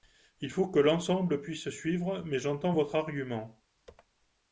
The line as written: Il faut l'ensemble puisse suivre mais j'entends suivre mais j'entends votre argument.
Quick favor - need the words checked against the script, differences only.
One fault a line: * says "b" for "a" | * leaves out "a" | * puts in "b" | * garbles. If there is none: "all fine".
* puts in "que"
* leaves out "suivre mais j'entends"